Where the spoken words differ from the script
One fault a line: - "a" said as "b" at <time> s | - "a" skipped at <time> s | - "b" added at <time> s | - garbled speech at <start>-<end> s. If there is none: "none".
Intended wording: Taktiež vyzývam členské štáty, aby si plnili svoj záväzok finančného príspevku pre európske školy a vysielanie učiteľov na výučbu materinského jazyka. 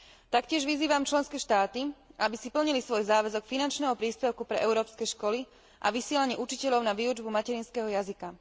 none